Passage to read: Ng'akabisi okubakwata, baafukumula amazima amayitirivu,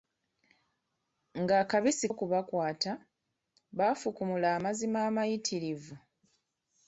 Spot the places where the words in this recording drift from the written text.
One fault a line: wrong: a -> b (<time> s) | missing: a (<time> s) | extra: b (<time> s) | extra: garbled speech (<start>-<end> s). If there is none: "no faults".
no faults